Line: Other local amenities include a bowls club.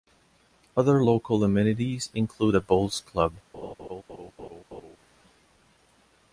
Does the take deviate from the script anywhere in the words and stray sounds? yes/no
yes